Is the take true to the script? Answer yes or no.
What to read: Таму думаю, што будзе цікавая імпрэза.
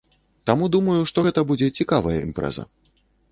no